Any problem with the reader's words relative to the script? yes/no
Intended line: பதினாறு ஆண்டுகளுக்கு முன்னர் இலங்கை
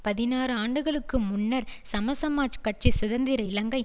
yes